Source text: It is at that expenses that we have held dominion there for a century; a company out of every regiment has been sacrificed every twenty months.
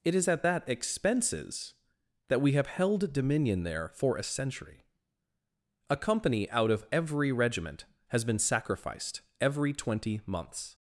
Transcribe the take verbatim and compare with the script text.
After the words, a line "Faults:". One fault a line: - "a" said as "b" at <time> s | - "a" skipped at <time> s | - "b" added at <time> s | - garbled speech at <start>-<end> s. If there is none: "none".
It is at that expenses that we have held dominion there for a century; a company out of every regiment has been sacrificed every twenty months.
Faults:
none